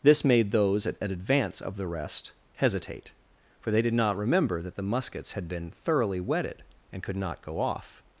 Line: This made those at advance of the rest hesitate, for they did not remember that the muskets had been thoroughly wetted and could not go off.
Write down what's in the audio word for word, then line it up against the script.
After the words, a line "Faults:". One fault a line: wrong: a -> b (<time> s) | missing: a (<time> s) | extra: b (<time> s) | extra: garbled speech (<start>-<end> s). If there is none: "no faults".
This made those at advance of the rest hesitate, for they did not remember that the muskets had been thoroughly wetted and could not go off.
Faults:
no faults